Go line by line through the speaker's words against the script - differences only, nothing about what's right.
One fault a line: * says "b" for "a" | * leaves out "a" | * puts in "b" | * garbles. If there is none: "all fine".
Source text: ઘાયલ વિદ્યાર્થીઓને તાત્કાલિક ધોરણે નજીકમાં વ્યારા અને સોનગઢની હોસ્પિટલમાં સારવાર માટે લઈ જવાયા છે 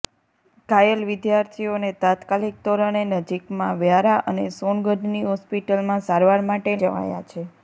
* leaves out "લઈ"